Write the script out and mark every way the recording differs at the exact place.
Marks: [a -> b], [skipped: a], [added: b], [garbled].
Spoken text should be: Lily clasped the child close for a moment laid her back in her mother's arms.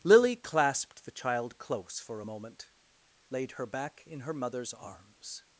Lily clasped the child close for a moment laid her back in her mother's arms.